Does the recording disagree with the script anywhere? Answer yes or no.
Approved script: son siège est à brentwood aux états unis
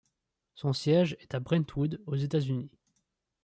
no